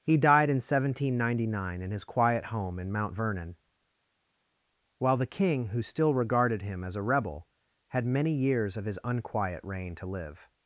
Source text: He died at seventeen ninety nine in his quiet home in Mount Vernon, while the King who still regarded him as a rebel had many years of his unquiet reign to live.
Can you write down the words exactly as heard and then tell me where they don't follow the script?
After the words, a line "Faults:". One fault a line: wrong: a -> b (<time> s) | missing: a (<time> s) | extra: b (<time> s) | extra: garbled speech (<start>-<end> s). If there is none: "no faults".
He died in seventeen ninety nine in his quiet home in Mount Vernon, while the King who still regarded him as a rebel had many years of his unquiet reign to live.
Faults:
wrong: at -> in (0.5 s)